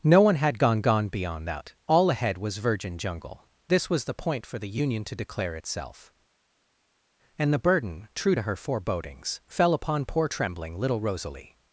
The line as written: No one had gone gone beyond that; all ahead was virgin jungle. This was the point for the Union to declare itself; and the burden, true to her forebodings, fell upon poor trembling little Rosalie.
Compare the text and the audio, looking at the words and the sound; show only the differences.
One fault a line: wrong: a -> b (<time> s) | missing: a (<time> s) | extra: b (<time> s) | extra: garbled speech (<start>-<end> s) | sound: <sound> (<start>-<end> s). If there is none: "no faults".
no faults